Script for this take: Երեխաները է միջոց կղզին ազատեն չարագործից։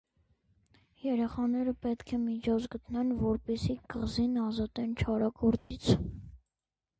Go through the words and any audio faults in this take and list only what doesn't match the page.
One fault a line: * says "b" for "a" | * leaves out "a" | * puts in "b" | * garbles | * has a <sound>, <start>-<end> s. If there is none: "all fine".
* puts in "պետք"
* puts in "գտնեն որպեսզի"
* has a dropout, 5.6-5.7 s